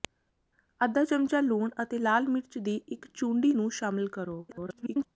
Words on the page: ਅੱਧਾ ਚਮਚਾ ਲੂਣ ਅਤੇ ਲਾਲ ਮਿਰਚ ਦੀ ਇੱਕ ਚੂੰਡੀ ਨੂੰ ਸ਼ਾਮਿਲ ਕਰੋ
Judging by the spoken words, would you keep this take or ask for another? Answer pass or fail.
fail